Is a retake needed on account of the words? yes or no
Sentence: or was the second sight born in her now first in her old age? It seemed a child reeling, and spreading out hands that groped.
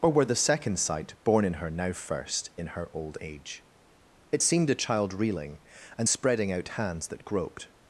yes